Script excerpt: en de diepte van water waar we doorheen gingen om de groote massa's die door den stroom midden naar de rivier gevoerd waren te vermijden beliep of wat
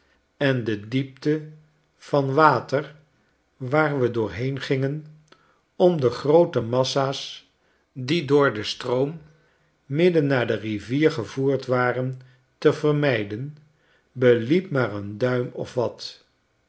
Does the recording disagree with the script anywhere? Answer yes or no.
yes